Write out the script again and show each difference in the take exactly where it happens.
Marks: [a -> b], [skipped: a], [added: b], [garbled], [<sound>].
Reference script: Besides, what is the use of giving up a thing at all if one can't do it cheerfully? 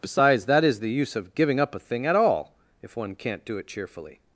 Besides, [what -> that] is the use of giving up a thing at all if one can't do it cheerfully?